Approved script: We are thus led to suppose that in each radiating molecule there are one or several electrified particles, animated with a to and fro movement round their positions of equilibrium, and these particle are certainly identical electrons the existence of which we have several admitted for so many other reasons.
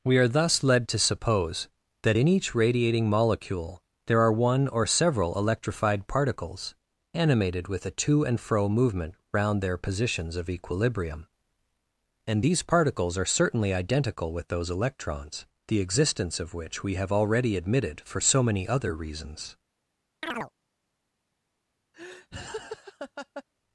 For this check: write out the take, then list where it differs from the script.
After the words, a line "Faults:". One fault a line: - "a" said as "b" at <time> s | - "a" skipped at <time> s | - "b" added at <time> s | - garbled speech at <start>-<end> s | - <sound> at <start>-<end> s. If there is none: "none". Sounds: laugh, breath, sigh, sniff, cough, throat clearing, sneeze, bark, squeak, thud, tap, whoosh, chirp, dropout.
We are thus led to suppose that in each radiating molecule there are one or several electrified particles, animated with a to and fro movement round their positions of equilibrium, and these particles are certainly identical with those electrons the existence of which we have already admitted for so many other reasons.
Faults:
- "particle" said as "particles" at 12.6 s
- "with those" added at 14.3 s
- "several" said as "already" at 17.1 s
- chirp at 20.2-20.5 s
- laugh at 21.9-23.4 s